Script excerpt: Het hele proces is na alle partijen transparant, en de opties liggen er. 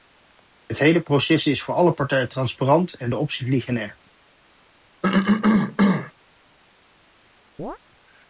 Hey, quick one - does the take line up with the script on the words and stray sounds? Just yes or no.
no